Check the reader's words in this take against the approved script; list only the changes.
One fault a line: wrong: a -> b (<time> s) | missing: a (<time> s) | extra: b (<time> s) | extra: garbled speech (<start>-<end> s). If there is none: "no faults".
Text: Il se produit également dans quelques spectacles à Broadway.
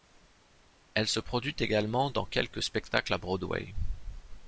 wrong: Il -> Elle (0.9 s)